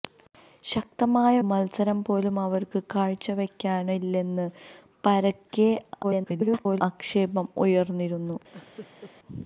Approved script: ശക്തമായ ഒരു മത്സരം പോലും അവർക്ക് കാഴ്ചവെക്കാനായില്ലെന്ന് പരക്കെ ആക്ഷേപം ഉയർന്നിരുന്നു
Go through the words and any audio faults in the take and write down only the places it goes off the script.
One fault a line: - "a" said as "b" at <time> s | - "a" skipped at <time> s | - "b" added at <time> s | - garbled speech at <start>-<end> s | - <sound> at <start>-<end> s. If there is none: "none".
- "ഒരു" skipped at 1.4 s
- garbled speech at 6.0-6.8 s
- laugh at 8.5-9.1 s